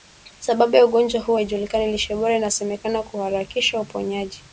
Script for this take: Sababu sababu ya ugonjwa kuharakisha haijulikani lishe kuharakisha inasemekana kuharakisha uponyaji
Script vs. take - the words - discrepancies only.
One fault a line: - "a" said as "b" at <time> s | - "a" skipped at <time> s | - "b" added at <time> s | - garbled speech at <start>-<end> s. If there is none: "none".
- "sababu" skipped at 0.8 s
- "kuharakisha" said as "huu" at 1.2 s
- "kuharakisha" said as "bora" at 2.2 s